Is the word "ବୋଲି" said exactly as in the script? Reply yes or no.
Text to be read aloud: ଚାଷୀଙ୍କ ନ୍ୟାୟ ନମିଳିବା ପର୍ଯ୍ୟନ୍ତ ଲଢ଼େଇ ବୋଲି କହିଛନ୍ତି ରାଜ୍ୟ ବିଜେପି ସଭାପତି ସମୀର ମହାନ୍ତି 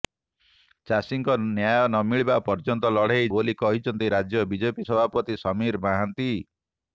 yes